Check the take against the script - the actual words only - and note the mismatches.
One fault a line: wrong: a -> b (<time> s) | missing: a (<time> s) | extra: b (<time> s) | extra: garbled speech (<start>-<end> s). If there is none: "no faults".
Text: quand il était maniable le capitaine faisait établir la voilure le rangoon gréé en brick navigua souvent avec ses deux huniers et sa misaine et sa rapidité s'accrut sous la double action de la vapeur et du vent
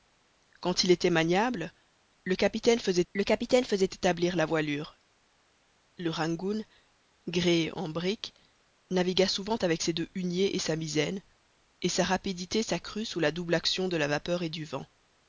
extra: le capitaine faisait (3.1 s)